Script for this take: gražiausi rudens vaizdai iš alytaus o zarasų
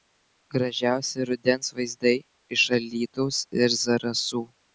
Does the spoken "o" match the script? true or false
false